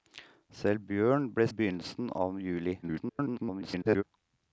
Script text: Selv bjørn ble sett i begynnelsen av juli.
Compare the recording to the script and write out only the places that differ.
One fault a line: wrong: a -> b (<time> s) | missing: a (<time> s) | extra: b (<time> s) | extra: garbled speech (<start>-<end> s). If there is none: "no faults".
missing: sett (1.5 s)
extra: garbled speech (2.8-4.0 s)